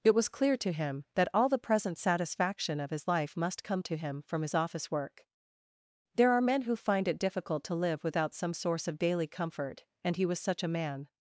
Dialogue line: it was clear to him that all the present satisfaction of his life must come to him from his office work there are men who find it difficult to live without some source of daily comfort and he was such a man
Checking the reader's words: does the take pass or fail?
pass